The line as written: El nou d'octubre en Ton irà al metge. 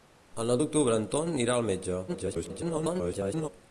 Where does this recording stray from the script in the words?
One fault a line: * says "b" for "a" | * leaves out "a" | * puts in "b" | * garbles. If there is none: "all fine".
* garbles